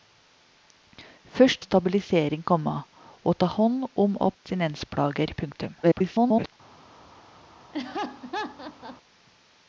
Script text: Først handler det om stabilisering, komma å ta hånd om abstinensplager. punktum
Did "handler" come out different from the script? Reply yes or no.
yes